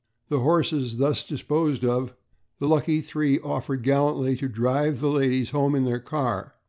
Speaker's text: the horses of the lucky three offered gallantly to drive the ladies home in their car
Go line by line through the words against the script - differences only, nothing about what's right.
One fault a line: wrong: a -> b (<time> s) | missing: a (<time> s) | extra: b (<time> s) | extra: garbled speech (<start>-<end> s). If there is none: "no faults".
extra: thus disposed (1.0 s)